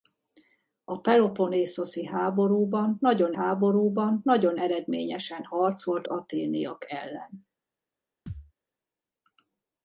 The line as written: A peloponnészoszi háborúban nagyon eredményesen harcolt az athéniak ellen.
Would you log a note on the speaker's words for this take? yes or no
yes